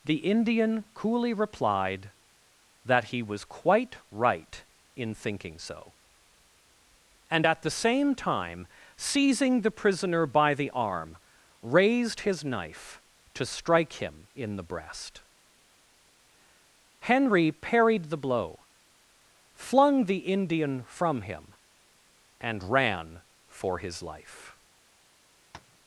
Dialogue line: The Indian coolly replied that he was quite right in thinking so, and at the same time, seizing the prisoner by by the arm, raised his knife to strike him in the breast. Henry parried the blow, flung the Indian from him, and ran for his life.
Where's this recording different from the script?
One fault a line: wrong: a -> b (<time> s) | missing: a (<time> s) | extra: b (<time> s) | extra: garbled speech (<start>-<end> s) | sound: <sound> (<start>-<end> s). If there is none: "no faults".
missing: by (10.5 s)
sound: tap (25.5-25.8 s)